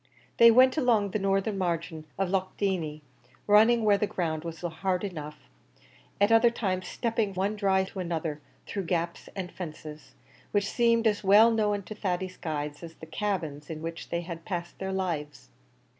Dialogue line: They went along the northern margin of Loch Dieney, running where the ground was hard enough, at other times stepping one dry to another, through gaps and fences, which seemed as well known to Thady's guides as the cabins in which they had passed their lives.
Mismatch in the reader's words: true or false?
false